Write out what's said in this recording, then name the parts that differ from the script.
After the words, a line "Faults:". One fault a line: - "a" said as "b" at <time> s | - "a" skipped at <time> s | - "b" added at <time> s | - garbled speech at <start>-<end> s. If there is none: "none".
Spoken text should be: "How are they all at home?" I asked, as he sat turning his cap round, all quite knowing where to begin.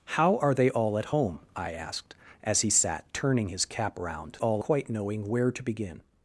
"How are they all at home?" I asked, as he sat turning his cap round, all quite knowing where to begin.
Faults:
none